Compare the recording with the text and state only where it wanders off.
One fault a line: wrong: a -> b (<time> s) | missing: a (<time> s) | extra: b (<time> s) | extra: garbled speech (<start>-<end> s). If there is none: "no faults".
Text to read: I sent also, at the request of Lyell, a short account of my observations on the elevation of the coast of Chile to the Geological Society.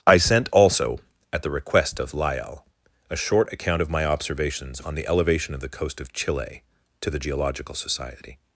no faults